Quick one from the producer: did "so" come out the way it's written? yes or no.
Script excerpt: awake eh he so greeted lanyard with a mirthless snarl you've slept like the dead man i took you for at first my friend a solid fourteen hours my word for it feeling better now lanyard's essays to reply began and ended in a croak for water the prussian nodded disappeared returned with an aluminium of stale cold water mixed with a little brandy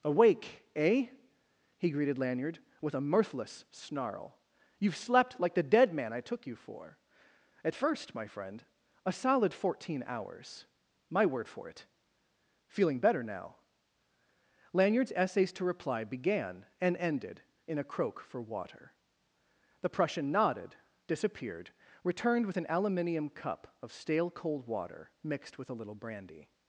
no